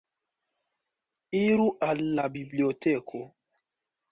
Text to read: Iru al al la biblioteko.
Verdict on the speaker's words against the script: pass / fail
fail